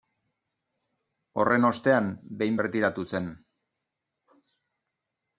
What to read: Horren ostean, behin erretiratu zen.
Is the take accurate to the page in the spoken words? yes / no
yes